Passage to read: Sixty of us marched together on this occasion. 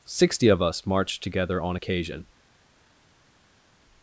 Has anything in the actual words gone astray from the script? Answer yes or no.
yes